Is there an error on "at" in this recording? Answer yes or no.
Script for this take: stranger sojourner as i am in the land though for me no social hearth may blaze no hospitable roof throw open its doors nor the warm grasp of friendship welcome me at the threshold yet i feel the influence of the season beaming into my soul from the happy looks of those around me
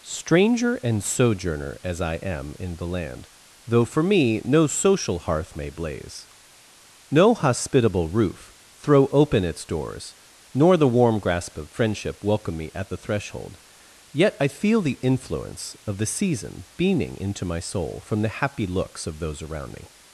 no